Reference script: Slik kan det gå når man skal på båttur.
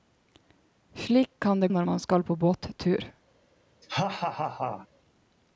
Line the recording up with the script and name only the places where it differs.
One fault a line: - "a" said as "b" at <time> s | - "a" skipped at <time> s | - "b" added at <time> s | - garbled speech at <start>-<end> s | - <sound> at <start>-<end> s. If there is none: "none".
- "gå" skipped at 1.7 s
- laugh at 3.8-4.9 s